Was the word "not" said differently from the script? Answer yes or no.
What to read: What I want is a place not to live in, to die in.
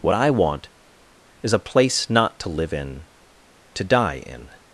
no